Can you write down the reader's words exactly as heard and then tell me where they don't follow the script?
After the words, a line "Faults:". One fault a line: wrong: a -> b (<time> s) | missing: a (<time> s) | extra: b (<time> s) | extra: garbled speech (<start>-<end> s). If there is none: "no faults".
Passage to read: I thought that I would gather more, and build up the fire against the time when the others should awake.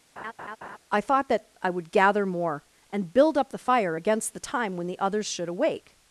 I thought that I would gather more, and build up the fire against the time when the others should awake.
Faults:
no faults